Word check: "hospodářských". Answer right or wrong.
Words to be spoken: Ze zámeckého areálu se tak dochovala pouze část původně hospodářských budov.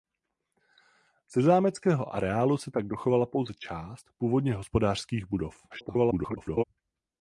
right